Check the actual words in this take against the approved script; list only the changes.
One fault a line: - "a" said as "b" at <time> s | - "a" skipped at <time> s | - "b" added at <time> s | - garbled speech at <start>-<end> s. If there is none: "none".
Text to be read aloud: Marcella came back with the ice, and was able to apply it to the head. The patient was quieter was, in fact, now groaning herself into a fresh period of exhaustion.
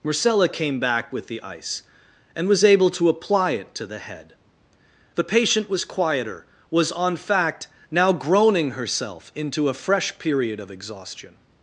- "in" said as "on" at 6.9 s